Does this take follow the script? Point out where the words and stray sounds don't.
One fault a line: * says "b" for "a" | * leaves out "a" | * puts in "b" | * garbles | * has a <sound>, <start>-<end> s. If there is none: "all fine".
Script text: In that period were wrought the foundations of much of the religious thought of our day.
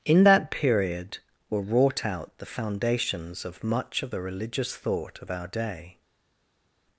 * puts in "out"